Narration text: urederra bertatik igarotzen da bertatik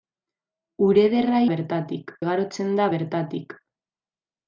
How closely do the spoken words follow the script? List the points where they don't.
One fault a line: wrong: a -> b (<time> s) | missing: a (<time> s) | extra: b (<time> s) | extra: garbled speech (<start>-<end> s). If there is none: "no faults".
no faults